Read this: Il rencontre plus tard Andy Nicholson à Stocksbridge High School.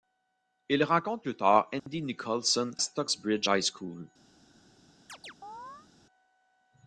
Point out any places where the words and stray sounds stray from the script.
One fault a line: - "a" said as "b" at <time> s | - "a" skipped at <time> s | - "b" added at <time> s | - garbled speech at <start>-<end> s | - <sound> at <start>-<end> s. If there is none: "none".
- dropout at 1.8-1.9 s
- "à" skipped at 2.7 s
- chirp at 5.1-5.9 s